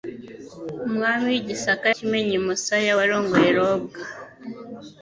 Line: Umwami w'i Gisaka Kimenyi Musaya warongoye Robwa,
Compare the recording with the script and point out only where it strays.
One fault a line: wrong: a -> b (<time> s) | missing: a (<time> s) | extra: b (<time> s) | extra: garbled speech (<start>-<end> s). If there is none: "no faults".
no faults